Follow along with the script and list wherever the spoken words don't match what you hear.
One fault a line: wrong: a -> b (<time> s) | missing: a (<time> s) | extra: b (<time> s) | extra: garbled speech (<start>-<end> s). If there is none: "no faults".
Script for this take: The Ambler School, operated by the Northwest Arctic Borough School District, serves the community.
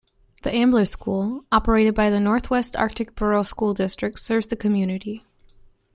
no faults